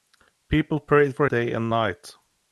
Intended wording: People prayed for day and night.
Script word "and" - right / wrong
right